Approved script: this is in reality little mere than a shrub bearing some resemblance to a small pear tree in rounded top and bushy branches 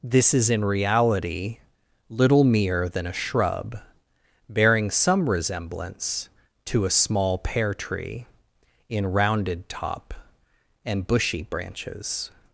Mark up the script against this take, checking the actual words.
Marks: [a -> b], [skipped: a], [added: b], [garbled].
this is in reality little mere than a shrub bearing some resemblance to a small pear tree in rounded top and bushy branches